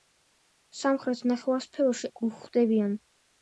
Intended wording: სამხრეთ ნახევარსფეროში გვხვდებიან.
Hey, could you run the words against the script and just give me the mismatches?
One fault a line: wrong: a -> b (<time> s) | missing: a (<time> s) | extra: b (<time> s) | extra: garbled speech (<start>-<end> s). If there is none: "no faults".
no faults